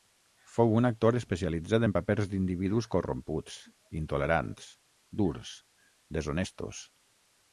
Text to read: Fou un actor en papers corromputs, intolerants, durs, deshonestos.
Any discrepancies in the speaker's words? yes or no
yes